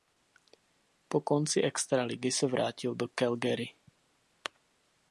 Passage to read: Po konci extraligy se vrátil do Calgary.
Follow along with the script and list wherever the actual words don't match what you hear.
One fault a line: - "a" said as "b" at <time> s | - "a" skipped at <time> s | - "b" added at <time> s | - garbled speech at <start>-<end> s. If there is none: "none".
none